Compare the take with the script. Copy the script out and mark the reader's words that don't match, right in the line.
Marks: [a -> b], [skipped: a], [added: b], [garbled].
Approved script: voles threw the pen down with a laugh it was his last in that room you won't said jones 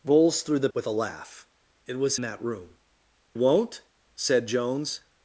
voles threw the [skipped: pen down] with a laugh it was [skipped: his last in] that room [skipped: you] won't said jones